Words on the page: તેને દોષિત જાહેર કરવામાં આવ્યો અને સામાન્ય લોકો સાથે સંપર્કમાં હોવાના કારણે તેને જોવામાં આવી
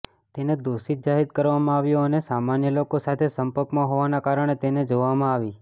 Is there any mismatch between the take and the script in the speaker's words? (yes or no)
no